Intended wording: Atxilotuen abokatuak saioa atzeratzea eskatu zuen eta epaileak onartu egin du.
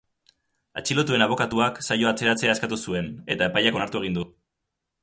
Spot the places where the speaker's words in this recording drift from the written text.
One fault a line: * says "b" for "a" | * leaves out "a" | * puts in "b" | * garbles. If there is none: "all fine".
all fine